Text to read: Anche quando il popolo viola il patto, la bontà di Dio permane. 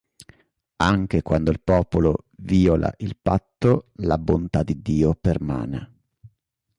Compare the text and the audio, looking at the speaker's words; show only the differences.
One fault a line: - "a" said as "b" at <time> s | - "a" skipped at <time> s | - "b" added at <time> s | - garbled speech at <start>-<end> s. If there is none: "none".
none